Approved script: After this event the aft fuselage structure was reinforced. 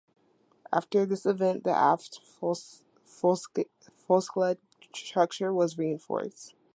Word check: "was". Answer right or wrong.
right